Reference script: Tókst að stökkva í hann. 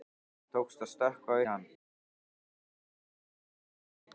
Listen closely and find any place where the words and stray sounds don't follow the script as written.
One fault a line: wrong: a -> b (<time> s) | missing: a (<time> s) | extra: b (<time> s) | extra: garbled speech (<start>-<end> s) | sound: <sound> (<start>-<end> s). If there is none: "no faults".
no faults